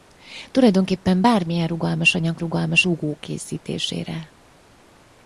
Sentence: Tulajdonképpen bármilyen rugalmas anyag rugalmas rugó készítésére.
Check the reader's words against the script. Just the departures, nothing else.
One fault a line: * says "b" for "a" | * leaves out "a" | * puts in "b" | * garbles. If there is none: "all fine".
all fine